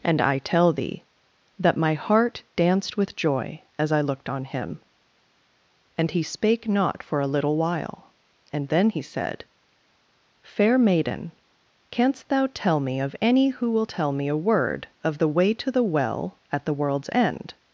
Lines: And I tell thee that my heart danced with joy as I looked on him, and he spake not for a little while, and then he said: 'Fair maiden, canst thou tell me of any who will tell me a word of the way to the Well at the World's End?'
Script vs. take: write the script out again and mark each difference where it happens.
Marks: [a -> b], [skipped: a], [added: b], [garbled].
And I tell thee that my heart danced with joy as I looked on him, and he spake not for a little while, and then he said: 'Fair maiden, canst thou tell me of any who will tell me a word of the way to the Well at the World's End?'